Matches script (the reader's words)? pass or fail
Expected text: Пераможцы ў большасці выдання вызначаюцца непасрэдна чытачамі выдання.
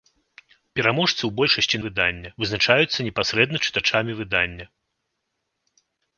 pass